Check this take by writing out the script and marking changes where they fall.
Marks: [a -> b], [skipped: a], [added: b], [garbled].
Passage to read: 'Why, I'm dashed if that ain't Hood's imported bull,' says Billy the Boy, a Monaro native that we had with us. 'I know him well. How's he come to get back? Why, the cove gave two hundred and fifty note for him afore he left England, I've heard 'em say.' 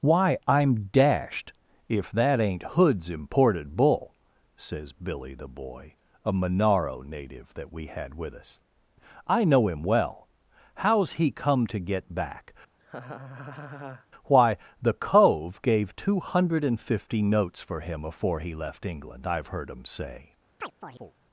'Why, I'm dashed if that ain't Hood's imported bull,' says Billy the Boy, a Monaro native that we had with us. 'I know him well. How's he come to get back? Why, the cove gave two hundred and fifty [note -> notes] for him afore he left England, I've heard 'em say.'